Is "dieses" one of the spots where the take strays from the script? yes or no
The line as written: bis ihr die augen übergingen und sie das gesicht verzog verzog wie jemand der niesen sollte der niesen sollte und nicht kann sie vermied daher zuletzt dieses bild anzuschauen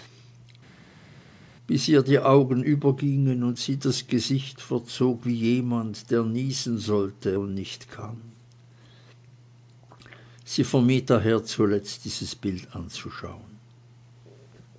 no